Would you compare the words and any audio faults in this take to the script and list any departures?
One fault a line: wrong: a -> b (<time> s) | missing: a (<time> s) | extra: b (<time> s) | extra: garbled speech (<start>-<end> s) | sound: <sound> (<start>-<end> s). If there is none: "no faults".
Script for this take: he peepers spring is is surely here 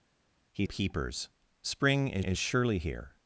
no faults